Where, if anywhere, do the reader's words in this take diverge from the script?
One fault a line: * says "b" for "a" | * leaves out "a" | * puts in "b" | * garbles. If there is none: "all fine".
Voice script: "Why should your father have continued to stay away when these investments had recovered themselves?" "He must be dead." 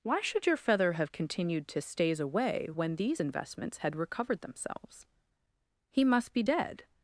* says "feather" for "father"
* says "stays" for "stay"